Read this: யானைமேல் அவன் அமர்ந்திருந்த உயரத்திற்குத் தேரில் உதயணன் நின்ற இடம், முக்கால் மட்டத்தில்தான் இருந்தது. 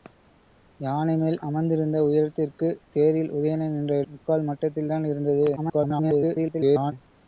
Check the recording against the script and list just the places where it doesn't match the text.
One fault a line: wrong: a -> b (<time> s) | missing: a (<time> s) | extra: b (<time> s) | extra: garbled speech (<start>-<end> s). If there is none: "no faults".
missing: அவன் (1.4 s)
missing: இடம் (4.0 s)
extra: garbled speech (5.6-6.9 s)